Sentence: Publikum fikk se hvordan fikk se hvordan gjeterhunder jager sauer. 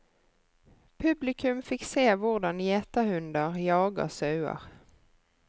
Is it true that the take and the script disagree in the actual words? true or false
true